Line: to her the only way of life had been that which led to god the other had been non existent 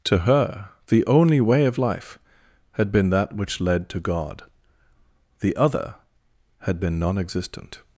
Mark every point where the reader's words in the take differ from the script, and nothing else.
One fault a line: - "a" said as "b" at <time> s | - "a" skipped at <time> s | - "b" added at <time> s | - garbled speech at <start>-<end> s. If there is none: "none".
none